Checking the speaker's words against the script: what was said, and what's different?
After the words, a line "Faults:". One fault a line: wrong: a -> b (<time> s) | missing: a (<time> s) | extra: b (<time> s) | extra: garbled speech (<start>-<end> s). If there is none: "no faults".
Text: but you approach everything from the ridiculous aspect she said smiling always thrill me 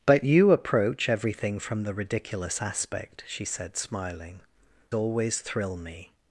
but you approach everything from the ridiculous aspect she said smiling always thrill me
Faults:
no faults